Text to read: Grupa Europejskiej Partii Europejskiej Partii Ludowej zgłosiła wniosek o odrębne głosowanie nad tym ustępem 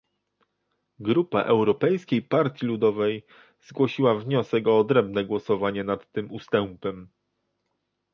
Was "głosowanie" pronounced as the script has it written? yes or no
yes